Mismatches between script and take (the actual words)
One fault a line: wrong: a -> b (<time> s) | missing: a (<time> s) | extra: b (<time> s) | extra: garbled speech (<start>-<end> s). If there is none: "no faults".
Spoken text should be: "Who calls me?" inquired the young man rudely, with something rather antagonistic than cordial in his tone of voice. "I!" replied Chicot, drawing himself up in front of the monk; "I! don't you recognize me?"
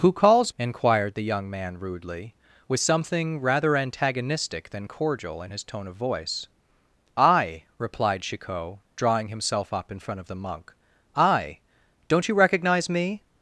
missing: me (0.5 s)